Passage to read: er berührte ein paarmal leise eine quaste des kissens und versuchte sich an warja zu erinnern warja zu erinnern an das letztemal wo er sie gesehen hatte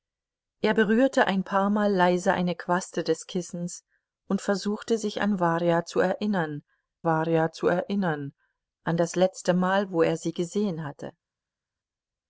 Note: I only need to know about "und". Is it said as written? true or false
true